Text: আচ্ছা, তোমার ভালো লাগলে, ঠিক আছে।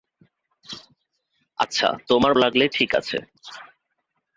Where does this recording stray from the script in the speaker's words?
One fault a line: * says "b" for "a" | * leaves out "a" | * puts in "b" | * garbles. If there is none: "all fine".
* leaves out "ভালো"